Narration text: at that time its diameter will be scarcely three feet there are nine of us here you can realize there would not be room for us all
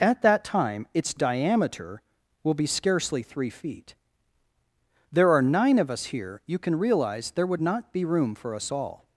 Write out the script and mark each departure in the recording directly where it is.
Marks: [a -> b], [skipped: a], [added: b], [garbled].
at that time its diameter will be scarcely three feet there are nine of us here you can realize there would not be room for us all